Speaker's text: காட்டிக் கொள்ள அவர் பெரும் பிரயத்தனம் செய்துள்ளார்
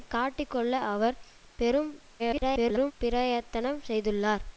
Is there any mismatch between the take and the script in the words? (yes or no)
yes